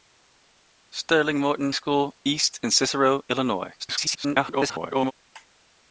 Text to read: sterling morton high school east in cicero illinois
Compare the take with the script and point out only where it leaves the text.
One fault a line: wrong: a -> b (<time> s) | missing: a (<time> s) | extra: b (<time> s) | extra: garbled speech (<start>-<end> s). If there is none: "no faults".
missing: high (1.7 s)
extra: garbled speech (3.8-5.1 s)